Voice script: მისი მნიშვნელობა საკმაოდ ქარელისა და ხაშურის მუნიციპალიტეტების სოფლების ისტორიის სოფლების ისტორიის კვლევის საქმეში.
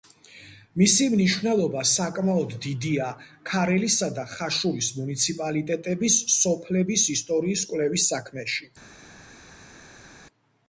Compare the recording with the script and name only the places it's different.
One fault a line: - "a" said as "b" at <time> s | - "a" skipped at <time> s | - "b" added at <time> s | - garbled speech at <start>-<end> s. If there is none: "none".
- "დიდია" added at 2.6 s
- "სოფლების ისტორიის" skipped at 7.7 s